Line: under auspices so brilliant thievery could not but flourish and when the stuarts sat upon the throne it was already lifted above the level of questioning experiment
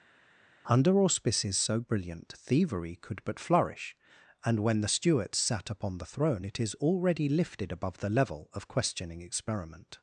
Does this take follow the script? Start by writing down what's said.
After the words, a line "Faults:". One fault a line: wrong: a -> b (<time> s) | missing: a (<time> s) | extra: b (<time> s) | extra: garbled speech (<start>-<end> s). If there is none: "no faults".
under auspices so brilliant thievery could but flourish and when the stuarts sat upon the throne it is already lifted above the level of questioning experiment
Faults:
missing: not (3.2 s)
wrong: was -> is (6.6 s)